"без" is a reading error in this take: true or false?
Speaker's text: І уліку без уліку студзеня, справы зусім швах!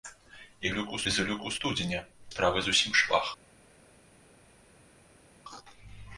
false